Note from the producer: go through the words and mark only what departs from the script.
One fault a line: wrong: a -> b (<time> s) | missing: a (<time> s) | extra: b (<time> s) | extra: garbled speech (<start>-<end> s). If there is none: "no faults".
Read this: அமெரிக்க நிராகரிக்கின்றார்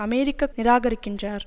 no faults